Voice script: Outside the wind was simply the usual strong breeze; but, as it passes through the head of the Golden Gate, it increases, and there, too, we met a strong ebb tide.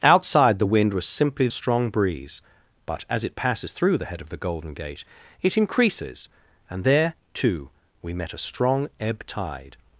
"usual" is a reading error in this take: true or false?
true